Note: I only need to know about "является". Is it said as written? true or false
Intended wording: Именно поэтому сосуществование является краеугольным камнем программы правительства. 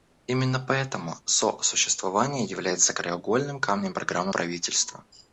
true